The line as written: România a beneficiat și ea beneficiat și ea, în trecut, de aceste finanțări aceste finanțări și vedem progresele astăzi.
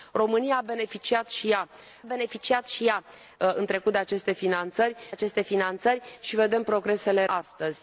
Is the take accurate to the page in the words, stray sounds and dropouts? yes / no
yes